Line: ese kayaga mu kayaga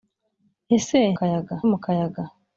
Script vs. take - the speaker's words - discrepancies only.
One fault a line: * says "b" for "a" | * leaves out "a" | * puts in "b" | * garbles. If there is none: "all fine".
all fine